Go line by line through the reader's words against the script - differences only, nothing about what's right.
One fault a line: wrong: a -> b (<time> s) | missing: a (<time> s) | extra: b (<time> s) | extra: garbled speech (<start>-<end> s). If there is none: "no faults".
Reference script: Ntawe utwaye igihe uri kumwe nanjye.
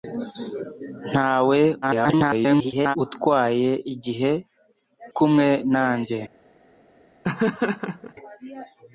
extra: garbled speech (1.8-3.0 s)
missing: uri (4.3 s)